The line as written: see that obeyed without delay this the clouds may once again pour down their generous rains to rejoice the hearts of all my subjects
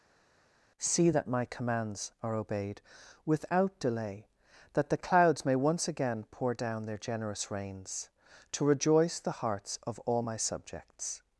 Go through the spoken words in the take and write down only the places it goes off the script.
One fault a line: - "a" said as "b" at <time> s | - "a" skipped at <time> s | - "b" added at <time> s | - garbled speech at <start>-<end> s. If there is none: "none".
- "my commands are" added at 1.3 s
- "this" said as "that" at 4.7 s